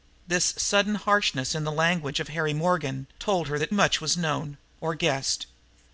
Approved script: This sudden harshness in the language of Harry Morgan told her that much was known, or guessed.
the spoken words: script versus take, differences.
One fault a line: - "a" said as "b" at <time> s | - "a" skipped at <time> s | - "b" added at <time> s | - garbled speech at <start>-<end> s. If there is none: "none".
none